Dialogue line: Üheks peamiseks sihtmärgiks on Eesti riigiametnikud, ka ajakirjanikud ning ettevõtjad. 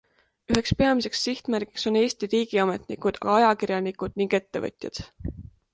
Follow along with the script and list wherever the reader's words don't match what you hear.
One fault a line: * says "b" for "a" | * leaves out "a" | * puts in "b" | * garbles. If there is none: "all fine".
all fine